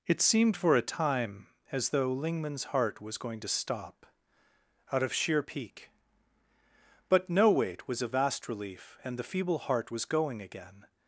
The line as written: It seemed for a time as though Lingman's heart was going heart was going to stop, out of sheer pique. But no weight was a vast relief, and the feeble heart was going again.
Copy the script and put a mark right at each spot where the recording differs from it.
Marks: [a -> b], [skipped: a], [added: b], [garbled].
It seemed for a time as though Lingman's heart was going [skipped: heart was going] to stop, out of sheer pique. But no weight was a vast relief, and the feeble heart was going again.